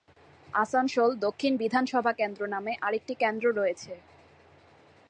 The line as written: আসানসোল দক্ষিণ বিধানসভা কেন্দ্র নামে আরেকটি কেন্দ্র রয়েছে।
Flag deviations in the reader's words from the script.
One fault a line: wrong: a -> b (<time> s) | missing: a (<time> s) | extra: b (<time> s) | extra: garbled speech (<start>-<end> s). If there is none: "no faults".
no faults